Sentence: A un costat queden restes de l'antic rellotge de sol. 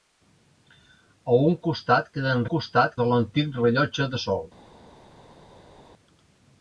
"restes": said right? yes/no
no